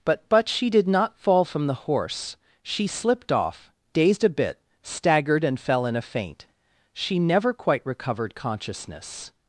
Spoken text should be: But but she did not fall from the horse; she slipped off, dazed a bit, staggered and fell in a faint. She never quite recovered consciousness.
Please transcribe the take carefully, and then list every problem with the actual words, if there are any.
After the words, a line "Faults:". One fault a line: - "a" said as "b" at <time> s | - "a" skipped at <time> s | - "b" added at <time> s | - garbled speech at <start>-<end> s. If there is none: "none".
But but she did not fall from the horse; she slipped off, dazed a bit, staggered and fell in a faint. She never quite recovered consciousness.
Faults:
none